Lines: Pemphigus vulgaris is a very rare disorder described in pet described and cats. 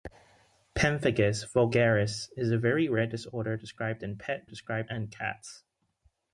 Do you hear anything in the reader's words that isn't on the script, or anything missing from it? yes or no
no